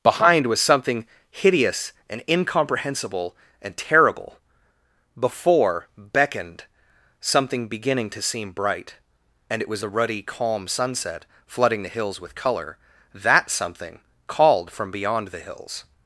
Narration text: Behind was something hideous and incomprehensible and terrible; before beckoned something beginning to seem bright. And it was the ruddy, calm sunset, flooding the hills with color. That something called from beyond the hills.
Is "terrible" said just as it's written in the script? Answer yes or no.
yes